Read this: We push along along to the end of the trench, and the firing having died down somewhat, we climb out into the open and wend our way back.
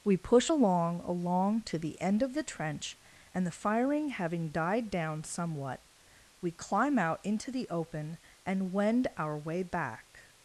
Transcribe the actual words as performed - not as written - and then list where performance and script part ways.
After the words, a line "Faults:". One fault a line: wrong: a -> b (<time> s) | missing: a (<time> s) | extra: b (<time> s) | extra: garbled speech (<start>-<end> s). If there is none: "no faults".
We push along along to the end of the trench, and the firing having died down somewhat, we climb out into the open and wend our way back.
Faults:
no faults